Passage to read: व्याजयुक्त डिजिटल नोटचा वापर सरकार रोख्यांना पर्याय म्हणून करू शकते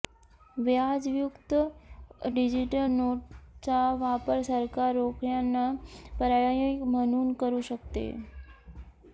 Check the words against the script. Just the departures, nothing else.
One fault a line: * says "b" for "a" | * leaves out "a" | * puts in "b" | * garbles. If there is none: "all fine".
all fine